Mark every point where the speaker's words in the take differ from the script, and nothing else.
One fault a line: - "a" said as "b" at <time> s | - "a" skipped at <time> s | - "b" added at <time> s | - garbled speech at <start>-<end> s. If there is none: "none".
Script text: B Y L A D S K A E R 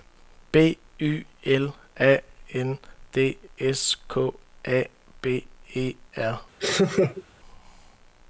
- "N" added at 2.5 s
- "B" added at 5.2 s